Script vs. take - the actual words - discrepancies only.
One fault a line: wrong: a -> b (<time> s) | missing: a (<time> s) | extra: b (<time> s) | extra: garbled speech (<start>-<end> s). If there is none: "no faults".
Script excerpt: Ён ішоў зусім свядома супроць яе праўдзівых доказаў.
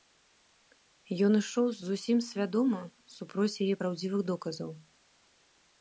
no faults